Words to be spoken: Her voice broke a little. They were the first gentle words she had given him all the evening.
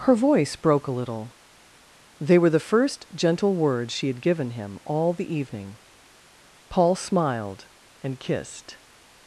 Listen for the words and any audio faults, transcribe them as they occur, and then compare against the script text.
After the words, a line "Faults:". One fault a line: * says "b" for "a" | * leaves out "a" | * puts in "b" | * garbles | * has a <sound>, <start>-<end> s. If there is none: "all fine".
Her voice broke a little. They were the first gentle words she had given him all the evening. Paul smiled and kissed
Faults:
* puts in "Paul smiled and kissed"